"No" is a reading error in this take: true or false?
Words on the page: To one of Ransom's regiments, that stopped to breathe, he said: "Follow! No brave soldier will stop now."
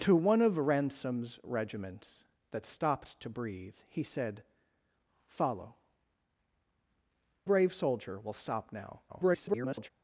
true